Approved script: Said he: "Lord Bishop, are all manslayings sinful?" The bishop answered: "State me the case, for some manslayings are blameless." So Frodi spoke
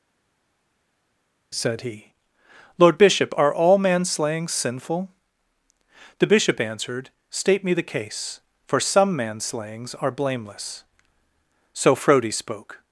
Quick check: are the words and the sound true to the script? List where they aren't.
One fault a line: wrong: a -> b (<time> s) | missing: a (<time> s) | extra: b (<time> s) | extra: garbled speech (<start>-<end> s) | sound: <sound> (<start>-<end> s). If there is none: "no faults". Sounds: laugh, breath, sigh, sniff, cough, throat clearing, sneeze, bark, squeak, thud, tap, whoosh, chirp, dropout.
no faults